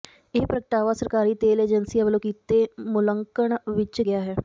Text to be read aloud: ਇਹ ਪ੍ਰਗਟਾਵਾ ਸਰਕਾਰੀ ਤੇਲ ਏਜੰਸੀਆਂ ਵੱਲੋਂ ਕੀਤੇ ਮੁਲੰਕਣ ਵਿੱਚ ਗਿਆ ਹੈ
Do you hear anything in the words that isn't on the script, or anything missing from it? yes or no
no